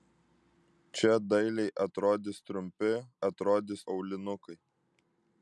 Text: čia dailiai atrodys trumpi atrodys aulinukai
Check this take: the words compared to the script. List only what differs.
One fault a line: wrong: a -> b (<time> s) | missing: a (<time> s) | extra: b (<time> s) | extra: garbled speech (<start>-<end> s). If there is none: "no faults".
no faults